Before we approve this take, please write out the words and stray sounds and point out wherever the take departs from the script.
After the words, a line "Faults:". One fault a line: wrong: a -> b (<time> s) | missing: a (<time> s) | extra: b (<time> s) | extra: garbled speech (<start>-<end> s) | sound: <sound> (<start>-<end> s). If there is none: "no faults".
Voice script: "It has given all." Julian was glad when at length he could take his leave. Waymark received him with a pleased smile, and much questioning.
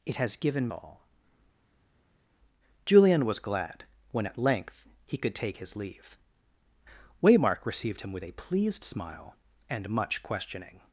"It has given all." Julian was glad when at length he could take his leave. Waymark received him with a pleased smile, and much questioning.
Faults:
no faults